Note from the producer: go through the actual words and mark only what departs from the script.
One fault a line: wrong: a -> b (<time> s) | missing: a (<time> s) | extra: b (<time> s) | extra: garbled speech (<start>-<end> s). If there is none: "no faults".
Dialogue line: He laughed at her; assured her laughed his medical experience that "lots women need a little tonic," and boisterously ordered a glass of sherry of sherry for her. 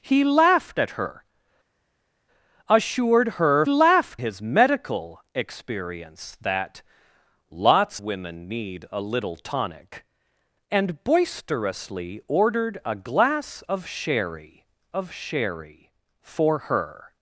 no faults